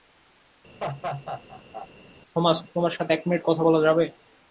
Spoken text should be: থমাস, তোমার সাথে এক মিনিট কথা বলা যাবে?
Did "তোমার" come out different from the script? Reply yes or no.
no